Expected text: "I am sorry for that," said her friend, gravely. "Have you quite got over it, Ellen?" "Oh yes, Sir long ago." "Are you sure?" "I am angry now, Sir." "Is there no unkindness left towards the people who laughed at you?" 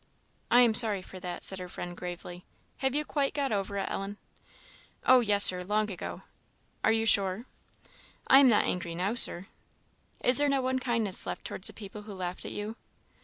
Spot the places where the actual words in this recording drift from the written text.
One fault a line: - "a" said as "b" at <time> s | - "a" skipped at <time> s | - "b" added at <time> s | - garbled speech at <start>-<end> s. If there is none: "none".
- "not" added at 8.5 s